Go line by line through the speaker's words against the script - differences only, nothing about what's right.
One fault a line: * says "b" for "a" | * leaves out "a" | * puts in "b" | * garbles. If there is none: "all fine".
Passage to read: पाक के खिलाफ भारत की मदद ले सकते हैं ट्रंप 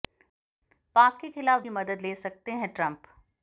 * leaves out "भारत"